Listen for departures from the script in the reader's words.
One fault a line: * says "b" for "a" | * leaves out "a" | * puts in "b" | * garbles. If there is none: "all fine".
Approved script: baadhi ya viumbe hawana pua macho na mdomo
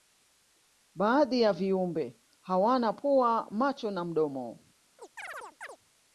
all fine